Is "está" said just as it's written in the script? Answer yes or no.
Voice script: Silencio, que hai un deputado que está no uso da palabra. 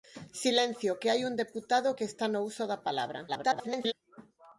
yes